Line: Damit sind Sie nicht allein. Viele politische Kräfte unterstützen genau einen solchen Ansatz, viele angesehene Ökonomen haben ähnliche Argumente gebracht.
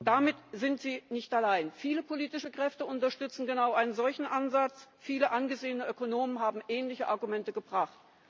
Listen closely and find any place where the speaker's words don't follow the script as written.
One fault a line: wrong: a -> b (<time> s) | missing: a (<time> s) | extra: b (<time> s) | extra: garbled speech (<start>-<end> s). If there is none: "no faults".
no faults